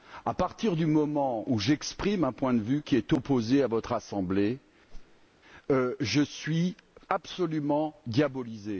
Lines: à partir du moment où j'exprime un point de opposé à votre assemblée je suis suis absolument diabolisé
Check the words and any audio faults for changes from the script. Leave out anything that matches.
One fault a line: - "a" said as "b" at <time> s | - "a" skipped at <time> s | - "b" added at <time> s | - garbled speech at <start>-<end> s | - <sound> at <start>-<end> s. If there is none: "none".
- "vue qui est" added at 2.6 s
- whoosh at 4.9-5.3 s
- "suis" skipped at 6.8 s